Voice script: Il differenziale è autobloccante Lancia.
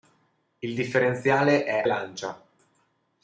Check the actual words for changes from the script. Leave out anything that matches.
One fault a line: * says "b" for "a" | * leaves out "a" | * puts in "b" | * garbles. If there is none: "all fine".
* leaves out "autobloccante"